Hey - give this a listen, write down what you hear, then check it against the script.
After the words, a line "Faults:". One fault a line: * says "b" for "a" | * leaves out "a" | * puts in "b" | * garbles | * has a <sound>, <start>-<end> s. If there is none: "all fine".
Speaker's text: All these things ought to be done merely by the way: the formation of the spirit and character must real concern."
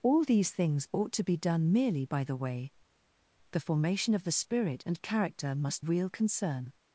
All these things ought to be done merely by the way: the formation of the spirit and character must real concern."
Faults:
all fine